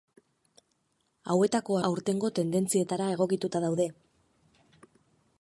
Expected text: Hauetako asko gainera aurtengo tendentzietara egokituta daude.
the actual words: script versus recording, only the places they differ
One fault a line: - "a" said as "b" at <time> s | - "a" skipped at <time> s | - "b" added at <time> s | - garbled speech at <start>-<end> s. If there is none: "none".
- "asko gainera" skipped at 1.8 s